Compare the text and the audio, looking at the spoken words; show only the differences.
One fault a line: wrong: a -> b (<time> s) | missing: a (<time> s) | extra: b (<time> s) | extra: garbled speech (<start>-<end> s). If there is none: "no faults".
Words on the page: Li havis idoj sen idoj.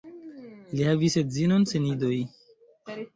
wrong: idoj -> edzinon (1.2 s)